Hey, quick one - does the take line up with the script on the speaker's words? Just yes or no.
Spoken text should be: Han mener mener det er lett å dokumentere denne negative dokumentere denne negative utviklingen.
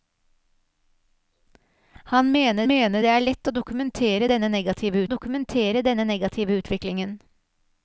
yes